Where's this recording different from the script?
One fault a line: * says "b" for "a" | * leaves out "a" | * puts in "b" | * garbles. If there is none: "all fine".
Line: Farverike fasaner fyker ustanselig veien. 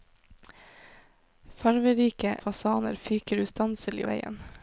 all fine